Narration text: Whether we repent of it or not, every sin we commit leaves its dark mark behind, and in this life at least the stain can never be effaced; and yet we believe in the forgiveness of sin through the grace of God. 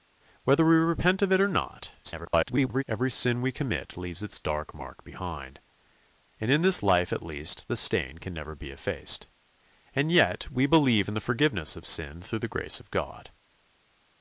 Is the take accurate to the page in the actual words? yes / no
no